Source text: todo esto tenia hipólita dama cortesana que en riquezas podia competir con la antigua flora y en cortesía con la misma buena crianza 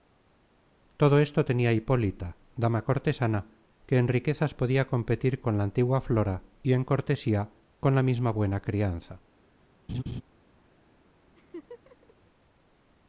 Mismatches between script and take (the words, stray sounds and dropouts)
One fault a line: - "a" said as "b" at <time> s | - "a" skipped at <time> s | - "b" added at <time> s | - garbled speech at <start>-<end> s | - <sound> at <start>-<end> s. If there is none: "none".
- laugh at 9.9-10.2 s
- laugh at 11.3-12.1 s